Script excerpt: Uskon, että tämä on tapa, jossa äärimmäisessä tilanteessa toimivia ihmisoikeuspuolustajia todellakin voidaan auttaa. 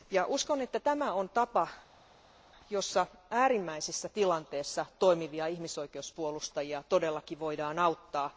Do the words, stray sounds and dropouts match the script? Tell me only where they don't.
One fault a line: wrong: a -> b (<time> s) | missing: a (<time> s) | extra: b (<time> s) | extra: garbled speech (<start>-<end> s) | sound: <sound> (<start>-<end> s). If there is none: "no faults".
no faults